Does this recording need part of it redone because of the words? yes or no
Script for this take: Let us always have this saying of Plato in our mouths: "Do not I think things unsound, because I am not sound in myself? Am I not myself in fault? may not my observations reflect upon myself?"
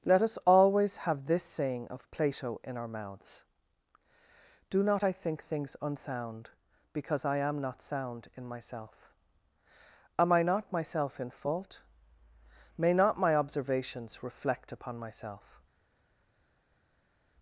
no